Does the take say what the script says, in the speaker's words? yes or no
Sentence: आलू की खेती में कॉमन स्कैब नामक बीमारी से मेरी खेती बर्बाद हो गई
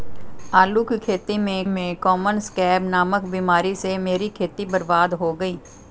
no